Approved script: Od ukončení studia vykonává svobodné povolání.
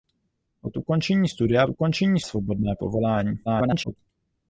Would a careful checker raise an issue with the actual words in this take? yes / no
yes